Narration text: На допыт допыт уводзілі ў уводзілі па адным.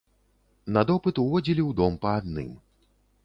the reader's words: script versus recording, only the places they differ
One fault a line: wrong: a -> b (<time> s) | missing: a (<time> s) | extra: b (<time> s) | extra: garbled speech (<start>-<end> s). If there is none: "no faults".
missing: допыт (1.1 s)
wrong: уводзілі -> дом (1.8 s)